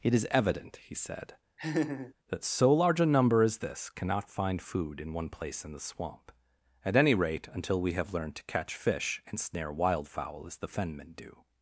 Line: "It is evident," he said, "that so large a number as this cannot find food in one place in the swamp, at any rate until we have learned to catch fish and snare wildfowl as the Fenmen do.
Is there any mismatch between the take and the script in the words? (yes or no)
no